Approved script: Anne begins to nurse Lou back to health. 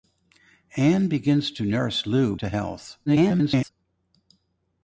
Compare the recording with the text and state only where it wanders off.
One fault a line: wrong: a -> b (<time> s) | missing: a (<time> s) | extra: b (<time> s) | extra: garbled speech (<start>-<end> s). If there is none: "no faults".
missing: back (2.4 s)
extra: garbled speech (3.1-3.7 s)